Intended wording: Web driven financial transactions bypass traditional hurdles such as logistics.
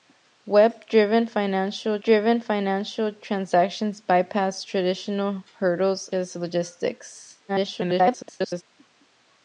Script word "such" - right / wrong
wrong